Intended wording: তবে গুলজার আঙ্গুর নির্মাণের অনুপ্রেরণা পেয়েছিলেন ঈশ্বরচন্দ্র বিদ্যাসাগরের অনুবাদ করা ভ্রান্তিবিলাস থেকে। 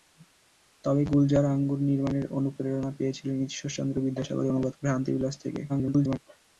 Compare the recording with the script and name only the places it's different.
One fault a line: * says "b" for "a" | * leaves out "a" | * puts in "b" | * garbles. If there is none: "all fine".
* leaves out "করা"
* garbles